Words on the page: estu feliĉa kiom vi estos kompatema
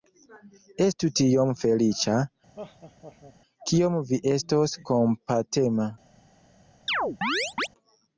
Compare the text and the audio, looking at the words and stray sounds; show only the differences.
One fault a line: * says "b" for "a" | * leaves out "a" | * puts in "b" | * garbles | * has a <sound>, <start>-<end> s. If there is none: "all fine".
* puts in "tiom"
* has a laugh, 2.5-3.4 s
* has a chirp, 6.9-7.7 s